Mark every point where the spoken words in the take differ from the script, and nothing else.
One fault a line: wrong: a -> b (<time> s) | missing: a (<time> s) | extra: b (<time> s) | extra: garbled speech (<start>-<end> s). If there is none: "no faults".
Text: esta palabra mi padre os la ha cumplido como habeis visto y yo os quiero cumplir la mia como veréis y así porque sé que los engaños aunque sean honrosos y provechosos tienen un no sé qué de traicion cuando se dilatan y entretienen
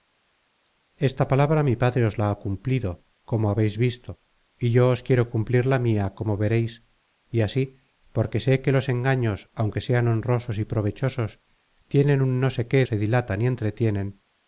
missing: de traicion cuando (12.8 s)